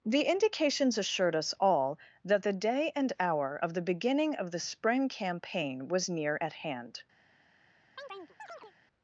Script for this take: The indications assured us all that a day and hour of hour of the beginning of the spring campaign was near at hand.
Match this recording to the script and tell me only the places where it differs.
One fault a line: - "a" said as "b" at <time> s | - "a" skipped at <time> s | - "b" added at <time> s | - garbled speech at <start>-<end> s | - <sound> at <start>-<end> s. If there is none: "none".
- "a" said as "the" at 2.4 s
- "hour of" skipped at 3.7 s
- chirp at 8.0-8.7 s